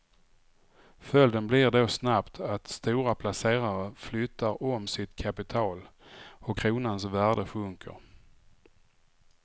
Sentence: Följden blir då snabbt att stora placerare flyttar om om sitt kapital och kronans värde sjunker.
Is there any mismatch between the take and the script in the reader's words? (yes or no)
yes